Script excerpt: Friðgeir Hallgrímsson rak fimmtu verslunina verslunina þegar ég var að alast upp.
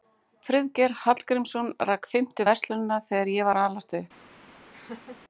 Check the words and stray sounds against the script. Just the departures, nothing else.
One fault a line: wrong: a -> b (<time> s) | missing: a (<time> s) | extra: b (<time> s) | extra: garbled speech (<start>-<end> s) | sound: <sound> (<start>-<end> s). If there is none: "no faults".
missing: verslunina (3.0 s)
sound: laugh (4.7-5.2 s)